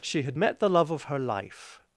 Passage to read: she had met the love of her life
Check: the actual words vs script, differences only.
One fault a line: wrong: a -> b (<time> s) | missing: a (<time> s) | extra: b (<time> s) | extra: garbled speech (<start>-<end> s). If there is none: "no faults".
no faults